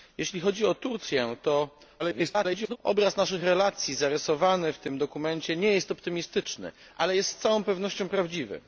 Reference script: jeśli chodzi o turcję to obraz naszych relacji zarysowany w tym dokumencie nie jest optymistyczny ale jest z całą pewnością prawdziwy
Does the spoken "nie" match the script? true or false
true